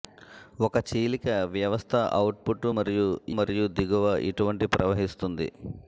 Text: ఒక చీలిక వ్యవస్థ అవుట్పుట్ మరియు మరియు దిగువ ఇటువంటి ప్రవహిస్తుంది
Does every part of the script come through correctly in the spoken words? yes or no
yes